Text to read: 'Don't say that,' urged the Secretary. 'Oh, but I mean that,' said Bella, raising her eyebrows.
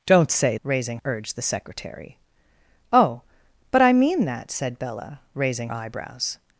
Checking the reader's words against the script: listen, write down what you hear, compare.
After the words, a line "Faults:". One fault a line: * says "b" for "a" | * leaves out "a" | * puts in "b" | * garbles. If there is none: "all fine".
'Don't say raising,' urged the Secretary. 'Oh, but I mean that,' said Bella, raising eyebrows.
Faults:
* says "raising" for "that"
* leaves out "her"